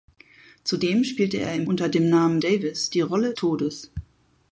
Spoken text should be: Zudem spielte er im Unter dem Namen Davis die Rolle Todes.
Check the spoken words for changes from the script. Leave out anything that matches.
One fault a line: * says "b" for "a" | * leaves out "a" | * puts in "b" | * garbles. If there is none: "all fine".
all fine